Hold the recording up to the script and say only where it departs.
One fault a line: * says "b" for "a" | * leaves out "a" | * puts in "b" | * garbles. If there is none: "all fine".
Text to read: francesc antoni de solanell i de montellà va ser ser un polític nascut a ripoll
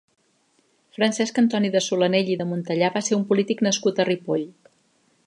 * leaves out "ser"